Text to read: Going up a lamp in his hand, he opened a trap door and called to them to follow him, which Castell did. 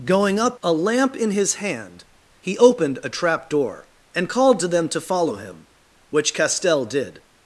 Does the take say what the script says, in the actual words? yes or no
yes